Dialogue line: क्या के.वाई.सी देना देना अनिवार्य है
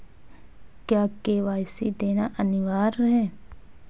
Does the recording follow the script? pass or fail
fail